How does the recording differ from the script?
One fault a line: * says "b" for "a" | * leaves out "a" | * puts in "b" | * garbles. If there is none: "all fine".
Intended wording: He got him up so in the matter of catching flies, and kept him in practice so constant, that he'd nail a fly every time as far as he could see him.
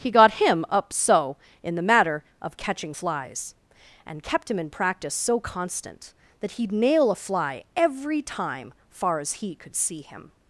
* leaves out "as"